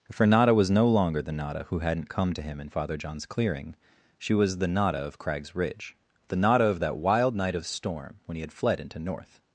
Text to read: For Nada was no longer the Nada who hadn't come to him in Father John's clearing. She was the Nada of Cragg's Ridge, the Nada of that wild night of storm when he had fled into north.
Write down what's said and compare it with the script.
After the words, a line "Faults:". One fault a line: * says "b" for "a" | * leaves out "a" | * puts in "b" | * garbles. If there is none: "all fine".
For Nada was no longer the Nada who hadn't come to him in Father John's clearing. She was the Nada of Cragg's Ridge, the Nada of that wild night of storm when he had fled into north.
Faults:
all fine